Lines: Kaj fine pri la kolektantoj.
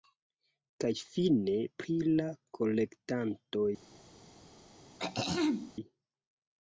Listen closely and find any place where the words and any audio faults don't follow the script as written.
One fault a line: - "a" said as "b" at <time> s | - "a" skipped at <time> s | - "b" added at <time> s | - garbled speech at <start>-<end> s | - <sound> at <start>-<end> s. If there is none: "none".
- throat clearing at 5.0-5.7 s